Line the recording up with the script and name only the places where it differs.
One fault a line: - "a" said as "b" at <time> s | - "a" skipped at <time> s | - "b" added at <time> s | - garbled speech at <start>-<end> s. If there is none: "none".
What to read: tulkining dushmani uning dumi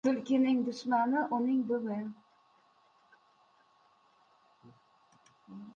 none